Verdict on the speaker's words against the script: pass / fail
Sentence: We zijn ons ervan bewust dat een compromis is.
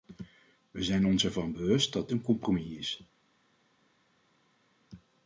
pass